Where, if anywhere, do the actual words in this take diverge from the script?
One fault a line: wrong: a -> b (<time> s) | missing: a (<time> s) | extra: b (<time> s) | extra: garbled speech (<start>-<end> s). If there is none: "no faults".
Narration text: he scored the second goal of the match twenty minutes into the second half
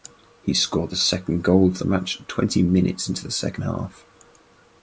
no faults